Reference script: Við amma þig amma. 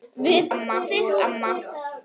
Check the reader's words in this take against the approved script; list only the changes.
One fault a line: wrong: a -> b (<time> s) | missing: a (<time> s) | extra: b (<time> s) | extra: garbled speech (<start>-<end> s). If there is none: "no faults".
no faults